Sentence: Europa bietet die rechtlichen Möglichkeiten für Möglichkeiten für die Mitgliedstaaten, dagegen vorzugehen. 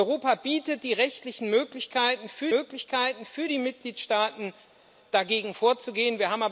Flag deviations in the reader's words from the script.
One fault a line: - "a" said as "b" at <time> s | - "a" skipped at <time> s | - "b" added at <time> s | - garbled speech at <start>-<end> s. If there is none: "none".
none